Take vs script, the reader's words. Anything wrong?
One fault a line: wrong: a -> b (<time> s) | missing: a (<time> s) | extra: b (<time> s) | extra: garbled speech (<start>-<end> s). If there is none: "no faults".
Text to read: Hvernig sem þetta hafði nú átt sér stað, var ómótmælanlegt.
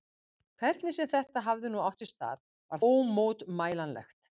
no faults